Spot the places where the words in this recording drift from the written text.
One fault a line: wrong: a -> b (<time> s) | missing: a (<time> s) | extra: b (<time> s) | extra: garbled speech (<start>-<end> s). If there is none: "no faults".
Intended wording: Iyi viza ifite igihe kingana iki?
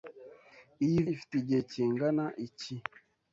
missing: viza (1.0 s)